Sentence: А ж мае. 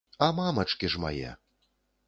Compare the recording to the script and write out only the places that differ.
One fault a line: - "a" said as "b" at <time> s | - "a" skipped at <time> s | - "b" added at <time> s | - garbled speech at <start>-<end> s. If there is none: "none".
- "мамачкі" added at 0.4 s